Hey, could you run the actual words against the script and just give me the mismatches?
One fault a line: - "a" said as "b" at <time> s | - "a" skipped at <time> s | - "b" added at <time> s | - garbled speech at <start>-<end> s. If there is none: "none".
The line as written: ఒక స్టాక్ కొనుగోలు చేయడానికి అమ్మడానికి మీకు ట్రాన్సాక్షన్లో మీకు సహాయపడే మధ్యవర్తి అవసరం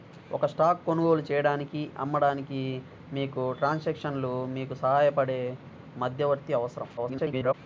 - garbled speech at 7.0-7.5 s